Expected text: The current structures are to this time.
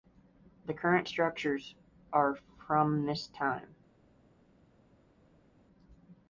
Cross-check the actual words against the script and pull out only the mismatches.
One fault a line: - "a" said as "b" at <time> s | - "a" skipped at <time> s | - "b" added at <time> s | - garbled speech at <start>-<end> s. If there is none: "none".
- "to" said as "from" at 2.3 s